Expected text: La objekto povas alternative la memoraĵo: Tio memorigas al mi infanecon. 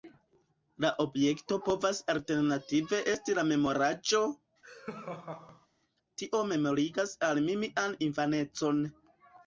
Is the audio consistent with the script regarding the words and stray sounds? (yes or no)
no